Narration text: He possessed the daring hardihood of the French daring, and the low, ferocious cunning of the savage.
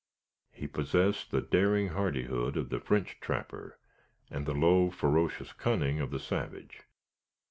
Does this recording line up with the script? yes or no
no